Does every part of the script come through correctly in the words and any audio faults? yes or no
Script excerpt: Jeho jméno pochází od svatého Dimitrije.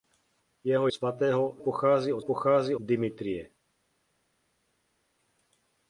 no